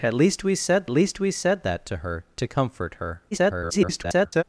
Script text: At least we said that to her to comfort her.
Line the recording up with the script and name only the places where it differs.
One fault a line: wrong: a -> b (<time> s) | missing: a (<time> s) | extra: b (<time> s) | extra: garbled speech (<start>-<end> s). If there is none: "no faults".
extra: least we said (0.9 s)
extra: garbled speech (3.3-4.4 s)